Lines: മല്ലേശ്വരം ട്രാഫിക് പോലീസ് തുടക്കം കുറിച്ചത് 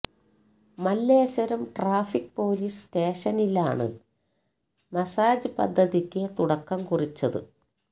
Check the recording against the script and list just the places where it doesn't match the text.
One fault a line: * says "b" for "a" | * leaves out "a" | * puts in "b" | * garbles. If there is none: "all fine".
* puts in "സ്റ്റേഷനിലാണ് മസാജ് പദ്ധതിക്ക്"